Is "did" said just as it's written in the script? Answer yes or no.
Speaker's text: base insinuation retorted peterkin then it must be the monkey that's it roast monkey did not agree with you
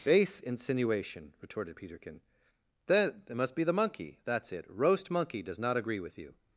no